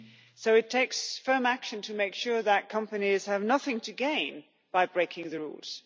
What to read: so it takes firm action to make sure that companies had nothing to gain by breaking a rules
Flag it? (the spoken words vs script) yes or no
yes